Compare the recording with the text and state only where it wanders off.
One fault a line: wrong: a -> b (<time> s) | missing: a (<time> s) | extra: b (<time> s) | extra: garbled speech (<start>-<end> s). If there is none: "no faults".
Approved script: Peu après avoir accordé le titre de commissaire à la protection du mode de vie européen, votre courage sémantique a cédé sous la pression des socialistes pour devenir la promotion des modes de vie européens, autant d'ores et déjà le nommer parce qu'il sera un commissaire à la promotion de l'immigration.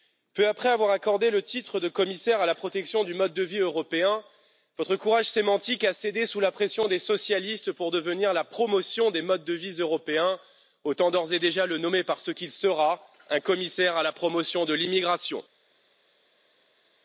no faults